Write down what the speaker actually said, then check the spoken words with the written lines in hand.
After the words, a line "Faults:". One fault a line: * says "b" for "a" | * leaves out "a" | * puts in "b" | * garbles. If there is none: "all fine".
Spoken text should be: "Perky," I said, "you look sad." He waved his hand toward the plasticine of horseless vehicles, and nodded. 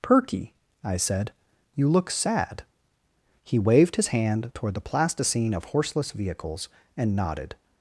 "Perky," I said, "you look sad." He waved his hand toward the plasticine of horseless vehicles, and nodded.
Faults:
all fine